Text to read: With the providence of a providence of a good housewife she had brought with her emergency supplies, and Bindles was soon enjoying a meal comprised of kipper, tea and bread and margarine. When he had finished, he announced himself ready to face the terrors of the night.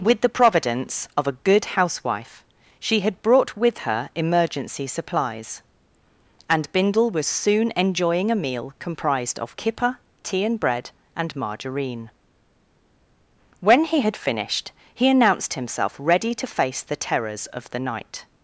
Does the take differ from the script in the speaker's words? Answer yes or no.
yes